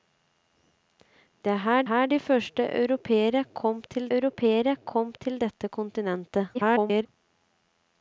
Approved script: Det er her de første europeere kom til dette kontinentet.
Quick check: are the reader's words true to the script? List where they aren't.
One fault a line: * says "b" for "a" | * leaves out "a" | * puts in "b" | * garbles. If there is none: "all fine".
* puts in "her"
* puts in "europeere kom til"
* garbles